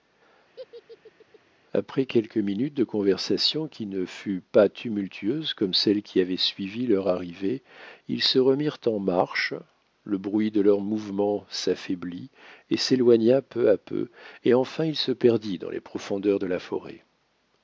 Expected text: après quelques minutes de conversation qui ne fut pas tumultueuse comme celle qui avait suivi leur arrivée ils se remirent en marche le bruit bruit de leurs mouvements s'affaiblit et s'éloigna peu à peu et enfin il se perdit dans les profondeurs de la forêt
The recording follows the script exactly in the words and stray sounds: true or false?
false